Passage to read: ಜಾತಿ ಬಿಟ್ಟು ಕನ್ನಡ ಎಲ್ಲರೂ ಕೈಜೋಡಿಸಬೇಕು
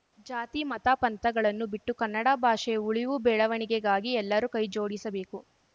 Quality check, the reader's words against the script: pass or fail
fail